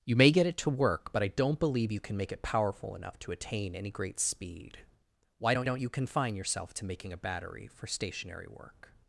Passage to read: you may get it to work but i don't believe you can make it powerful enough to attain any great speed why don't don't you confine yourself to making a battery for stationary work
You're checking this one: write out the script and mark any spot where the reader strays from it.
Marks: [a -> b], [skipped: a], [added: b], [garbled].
you may get it to work but i don't believe you can make it powerful enough to attain any great speed why don't don't you confine yourself to making a battery for stationary work